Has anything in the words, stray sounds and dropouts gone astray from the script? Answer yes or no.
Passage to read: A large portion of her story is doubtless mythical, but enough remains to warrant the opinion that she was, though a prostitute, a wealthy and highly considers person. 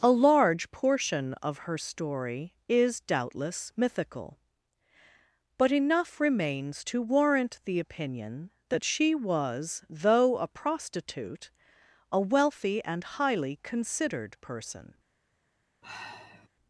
yes